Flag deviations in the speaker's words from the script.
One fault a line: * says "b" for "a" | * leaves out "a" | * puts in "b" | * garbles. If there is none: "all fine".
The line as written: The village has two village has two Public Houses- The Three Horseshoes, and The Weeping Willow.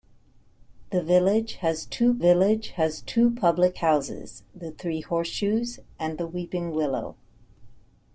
all fine